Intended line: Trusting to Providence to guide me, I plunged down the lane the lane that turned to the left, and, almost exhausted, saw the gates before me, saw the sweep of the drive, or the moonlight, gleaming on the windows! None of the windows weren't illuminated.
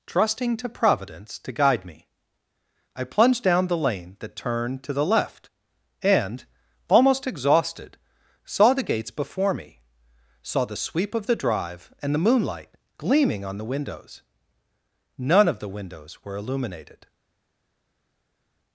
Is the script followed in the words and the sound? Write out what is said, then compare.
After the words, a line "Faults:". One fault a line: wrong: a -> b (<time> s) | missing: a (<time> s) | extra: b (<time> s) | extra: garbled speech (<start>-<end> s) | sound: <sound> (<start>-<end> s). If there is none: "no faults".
Trusting to Providence to guide me, I plunged down the lane that turned to the left, and, almost exhausted, saw the gates before me, saw the sweep of the drive, and the moonlight, gleaming on the windows! None of the windows were illuminated.
Faults:
missing: the lane (4.2 s)
wrong: or -> and (12.0 s)
wrong: weren't -> were (16.2 s)